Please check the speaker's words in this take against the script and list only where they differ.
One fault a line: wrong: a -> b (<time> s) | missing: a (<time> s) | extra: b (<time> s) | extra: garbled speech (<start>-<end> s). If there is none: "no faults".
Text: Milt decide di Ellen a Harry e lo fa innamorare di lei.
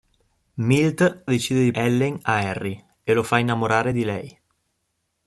no faults